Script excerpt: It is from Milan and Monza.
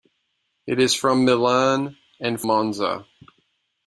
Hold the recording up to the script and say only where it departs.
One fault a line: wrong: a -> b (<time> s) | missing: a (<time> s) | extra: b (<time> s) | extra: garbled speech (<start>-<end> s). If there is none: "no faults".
no faults